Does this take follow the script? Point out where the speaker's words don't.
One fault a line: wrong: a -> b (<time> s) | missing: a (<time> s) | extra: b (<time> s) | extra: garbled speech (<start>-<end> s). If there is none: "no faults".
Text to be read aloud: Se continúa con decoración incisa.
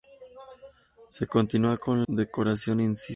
no faults